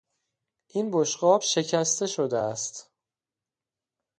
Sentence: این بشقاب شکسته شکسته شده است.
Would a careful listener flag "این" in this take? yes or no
no